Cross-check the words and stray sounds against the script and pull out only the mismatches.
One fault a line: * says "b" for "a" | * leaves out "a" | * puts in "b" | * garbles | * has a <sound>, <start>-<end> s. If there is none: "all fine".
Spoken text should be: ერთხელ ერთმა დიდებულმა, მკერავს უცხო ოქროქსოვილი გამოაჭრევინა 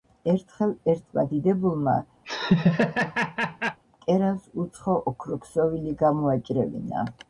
* has a laugh, 2.2-3.8 s